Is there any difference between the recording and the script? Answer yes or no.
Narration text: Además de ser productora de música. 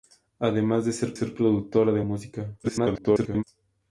yes